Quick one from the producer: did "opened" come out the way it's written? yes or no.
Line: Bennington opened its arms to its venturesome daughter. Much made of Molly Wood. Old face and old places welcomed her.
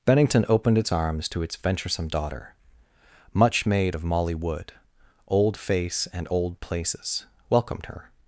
yes